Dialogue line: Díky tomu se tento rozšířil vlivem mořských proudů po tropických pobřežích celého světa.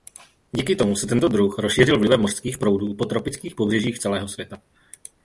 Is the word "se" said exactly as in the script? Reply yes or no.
yes